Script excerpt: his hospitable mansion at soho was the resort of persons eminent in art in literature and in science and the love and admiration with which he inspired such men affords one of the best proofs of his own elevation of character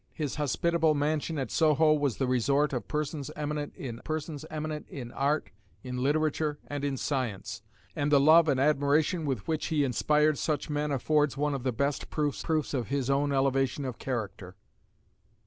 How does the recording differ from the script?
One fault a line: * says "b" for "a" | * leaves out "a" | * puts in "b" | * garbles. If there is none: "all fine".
* puts in "persons eminent in"
* puts in "proofs"